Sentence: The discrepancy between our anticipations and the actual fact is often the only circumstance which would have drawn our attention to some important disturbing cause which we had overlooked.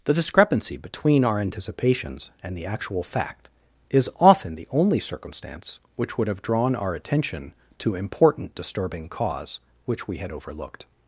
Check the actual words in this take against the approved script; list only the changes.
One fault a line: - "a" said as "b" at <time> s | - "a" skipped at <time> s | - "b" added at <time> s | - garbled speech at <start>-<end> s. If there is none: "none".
- "some" skipped at 8.0 s